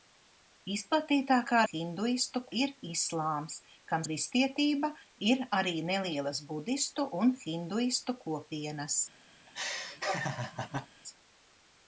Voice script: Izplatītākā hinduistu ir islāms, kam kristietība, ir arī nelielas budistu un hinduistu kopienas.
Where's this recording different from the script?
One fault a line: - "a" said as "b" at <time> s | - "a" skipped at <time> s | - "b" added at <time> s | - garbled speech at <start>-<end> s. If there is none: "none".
none